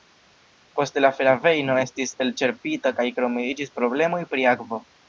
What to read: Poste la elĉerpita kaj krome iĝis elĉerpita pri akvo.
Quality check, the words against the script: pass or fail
fail